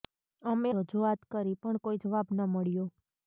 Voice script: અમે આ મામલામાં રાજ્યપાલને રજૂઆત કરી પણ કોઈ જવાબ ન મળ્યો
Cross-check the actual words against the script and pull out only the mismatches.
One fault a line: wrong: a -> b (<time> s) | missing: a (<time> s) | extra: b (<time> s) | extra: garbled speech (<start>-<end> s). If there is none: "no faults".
missing: આ મામલામાં રાજ્યપાલને (0.7 s)